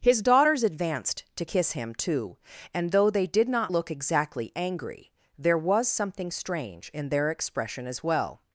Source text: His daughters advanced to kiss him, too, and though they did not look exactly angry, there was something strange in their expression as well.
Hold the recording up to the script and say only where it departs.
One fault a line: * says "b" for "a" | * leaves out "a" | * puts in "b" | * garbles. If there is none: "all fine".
all fine